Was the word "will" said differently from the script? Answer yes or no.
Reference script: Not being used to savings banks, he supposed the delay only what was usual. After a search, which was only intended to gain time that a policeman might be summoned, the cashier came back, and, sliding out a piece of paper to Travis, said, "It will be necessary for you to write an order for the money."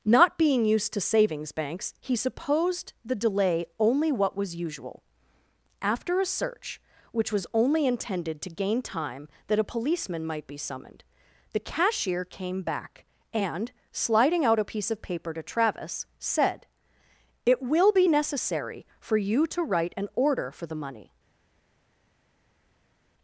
no